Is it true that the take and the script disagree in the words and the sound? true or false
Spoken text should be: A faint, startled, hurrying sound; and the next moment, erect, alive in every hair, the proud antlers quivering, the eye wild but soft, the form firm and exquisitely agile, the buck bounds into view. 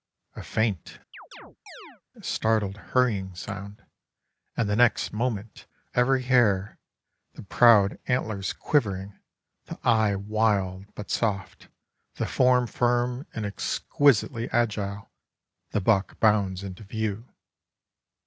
true